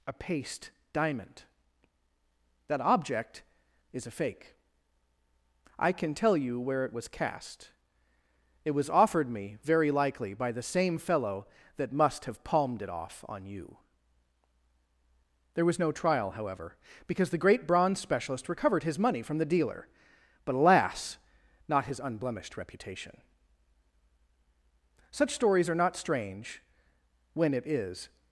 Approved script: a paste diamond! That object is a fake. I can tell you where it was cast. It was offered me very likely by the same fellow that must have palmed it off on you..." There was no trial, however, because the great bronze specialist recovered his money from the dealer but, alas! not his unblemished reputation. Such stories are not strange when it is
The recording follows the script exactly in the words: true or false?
true